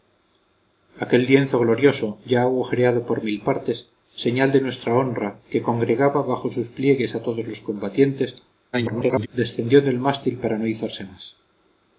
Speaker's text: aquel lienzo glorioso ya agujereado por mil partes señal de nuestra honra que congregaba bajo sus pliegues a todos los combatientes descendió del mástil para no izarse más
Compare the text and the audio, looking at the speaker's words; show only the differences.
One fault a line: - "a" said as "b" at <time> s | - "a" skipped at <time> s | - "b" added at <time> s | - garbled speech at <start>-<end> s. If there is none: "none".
- garbled speech at 8.7-9.3 s